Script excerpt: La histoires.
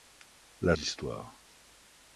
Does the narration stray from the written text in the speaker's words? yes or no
no